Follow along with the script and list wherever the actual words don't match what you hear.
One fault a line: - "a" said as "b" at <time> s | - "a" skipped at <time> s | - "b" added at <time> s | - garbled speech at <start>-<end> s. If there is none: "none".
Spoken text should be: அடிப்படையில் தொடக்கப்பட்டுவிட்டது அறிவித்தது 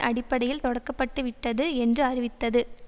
- "என்று" added at 1.7 s